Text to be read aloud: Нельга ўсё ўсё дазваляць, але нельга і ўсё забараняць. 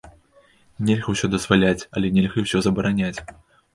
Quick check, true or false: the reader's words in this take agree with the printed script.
false